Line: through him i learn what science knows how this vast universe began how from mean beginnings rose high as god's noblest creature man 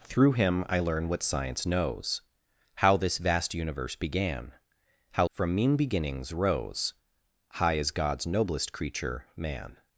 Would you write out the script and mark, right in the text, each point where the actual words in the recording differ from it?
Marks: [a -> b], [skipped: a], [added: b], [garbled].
through him i learn what science knows how this vast universe began how from mean beginnings rose high as god's noblest creature man